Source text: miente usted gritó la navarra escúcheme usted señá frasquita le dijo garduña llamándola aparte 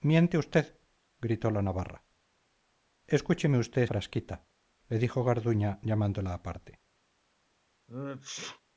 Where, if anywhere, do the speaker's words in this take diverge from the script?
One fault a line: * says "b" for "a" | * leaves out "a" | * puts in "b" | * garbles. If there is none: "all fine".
* leaves out "señá"